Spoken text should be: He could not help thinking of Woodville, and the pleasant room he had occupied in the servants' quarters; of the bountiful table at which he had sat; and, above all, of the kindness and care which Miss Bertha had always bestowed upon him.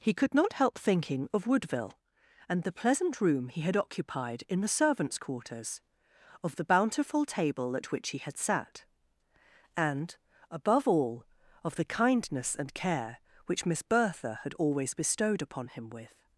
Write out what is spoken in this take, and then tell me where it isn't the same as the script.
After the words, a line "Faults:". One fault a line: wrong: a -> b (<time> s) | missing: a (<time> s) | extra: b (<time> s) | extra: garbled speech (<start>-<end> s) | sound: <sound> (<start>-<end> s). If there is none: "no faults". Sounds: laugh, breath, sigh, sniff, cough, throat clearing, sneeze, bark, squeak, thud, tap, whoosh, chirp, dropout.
He could not help thinking of Woodville, and the pleasant room he had occupied in the servants' quarters; of the bountiful table at which he had sat; and, above all, of the kindness and care which Miss Bertha had always bestowed upon him. With
Faults:
extra: With (15.9 s)